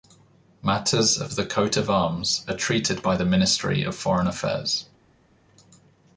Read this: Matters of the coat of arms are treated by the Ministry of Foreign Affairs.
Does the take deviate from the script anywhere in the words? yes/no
no